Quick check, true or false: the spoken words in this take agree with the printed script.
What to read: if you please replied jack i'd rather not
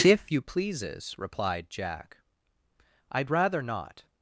false